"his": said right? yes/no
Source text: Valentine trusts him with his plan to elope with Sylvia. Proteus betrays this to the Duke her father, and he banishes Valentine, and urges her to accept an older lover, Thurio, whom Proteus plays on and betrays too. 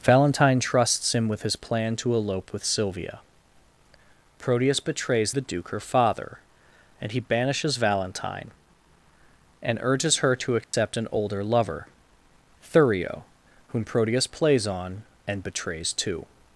yes